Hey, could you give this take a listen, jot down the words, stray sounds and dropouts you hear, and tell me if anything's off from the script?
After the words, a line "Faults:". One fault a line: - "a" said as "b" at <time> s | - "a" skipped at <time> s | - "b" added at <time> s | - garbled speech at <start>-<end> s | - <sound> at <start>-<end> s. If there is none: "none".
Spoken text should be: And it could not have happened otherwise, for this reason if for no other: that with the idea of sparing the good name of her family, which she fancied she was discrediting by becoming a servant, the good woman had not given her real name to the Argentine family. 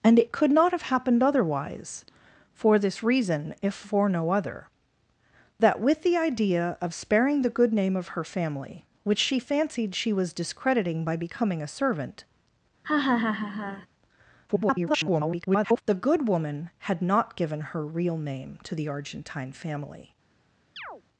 And it could not have happened otherwise, for this reason if for no other: that with the idea of sparing the good name of her family, which she fancied she was discrediting by becoming a servant, [garbled] the good woman had not given her real name to the Argentine family.
Faults:
- laugh at 12.8-13.9 s
- garbled speech at 14.5-15.8 s
- chirp at 20.8-21.0 s